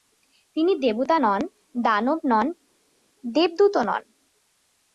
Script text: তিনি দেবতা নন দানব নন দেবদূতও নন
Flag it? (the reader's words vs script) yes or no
no